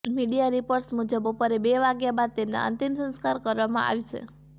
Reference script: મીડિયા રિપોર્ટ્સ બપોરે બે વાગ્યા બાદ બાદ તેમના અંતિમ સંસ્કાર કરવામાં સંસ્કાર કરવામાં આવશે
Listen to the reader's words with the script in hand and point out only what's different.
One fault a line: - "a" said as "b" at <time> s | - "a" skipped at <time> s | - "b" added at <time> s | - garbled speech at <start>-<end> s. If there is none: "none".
- "મુજબ" added at 0.9 s
- "બાદ" skipped at 2.4 s
- "સંસ્કાર કરવામાં" skipped at 3.9 s